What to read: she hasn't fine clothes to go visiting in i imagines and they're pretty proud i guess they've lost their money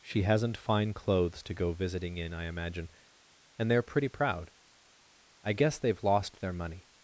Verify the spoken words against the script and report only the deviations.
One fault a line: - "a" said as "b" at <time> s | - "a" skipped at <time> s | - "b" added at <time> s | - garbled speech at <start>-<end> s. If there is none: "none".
- "imagines" said as "imagine" at 2.5 s